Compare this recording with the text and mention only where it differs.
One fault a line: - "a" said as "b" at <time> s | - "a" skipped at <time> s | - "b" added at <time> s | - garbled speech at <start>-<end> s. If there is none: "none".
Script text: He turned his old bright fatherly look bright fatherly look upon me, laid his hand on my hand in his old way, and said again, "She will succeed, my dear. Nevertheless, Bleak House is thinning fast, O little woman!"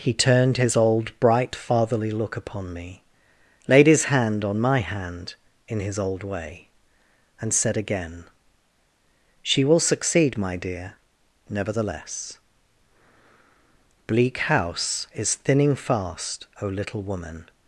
- "bright fatherly look" skipped at 2.4 s